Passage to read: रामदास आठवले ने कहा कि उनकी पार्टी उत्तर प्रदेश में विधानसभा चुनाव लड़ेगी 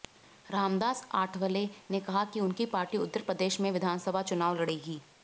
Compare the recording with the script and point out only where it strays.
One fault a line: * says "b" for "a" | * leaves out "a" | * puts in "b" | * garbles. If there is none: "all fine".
all fine